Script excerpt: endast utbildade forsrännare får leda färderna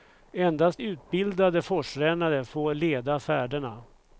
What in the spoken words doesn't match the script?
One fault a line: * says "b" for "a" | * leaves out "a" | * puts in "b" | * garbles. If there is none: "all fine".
all fine